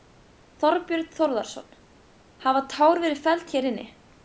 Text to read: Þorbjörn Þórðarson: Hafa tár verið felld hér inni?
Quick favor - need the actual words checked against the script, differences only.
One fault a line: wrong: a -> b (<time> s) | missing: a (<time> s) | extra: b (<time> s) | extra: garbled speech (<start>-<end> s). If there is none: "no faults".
no faults